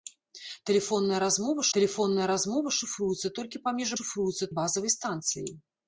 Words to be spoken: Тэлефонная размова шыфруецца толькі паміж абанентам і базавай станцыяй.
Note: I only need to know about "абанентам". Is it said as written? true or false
false